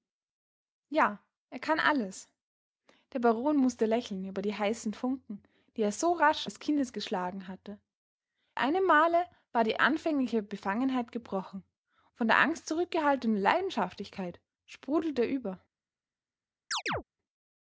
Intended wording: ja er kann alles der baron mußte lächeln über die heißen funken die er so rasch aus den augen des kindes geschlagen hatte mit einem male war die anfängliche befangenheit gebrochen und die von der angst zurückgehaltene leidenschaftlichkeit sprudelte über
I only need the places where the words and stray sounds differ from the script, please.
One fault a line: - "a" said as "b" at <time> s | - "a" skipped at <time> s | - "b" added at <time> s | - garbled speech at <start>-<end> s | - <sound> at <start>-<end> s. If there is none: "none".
- "aus den augen" skipped at 6.5 s
- "mit" skipped at 7.8 s
- "und die" skipped at 11.6 s
- chirp at 16.7-17.0 s